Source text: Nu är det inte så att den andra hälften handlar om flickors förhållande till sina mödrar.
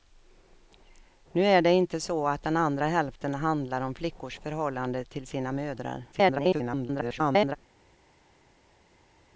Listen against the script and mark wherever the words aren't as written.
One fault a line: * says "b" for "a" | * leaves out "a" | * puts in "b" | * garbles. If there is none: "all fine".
* garbles